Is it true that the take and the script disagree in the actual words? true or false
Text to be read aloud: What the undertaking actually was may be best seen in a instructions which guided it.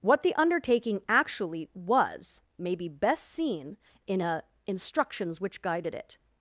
false